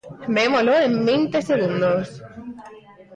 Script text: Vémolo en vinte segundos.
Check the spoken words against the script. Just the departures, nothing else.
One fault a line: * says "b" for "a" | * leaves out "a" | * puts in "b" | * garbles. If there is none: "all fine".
all fine